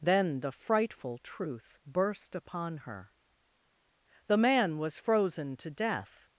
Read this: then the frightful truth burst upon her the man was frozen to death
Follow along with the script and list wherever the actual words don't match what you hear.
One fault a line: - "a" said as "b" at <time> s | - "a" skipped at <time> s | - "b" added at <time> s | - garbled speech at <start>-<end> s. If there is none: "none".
none